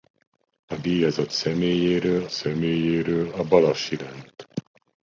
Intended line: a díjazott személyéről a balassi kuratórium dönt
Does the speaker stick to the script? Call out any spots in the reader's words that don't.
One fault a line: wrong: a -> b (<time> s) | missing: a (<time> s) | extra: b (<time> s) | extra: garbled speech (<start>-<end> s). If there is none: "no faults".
extra: személyéről (2.3 s)
missing: kuratórium (4.0 s)